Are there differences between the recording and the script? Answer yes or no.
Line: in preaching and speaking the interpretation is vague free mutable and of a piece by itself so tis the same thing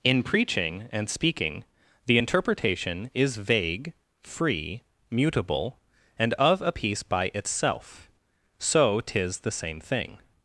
no